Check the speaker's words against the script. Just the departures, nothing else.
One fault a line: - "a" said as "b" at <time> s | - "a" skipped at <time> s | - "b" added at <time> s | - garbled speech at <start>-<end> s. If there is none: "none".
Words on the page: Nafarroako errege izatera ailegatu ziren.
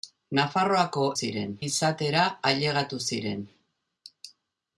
- "errege" said as "ziren" at 1.2 s